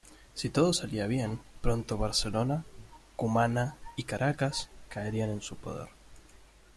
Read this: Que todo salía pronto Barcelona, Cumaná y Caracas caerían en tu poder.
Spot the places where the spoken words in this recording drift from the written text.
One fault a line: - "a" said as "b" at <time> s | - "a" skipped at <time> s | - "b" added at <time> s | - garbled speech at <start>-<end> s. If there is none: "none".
- "Que" said as "Si" at 0.3 s
- "bien" added at 1.1 s
- "tu" said as "su" at 5.4 s